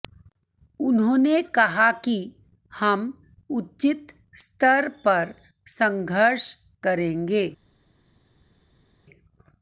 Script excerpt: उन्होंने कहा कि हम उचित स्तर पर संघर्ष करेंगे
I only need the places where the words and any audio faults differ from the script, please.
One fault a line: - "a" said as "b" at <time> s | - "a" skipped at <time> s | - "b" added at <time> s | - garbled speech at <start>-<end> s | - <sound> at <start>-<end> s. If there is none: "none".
none